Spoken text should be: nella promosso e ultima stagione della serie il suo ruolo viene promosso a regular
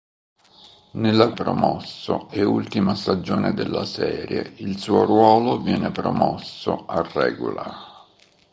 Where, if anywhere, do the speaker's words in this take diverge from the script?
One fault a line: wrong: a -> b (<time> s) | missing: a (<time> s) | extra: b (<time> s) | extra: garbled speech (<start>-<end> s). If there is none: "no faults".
no faults